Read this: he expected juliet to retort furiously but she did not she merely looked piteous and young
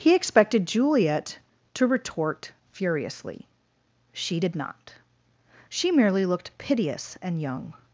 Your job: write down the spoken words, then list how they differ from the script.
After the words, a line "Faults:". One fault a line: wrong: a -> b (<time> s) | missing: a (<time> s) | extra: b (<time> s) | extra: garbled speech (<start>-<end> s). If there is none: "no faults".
he expected juliet to retort furiously she did not she merely looked piteous and young
Faults:
missing: but (3.5 s)